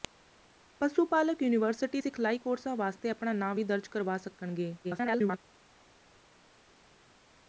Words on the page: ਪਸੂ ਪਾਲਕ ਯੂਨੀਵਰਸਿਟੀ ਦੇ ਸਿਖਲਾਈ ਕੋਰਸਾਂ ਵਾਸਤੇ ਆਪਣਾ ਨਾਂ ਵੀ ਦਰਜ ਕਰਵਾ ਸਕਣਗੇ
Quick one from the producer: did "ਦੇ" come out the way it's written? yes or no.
no